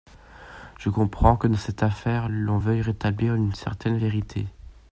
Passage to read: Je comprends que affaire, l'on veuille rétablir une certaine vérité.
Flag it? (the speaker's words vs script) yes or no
yes